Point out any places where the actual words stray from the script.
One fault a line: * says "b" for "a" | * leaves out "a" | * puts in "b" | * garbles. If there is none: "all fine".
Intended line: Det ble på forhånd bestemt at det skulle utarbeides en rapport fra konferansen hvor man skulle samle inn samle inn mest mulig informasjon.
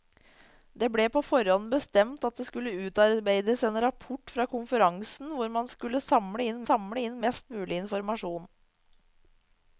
all fine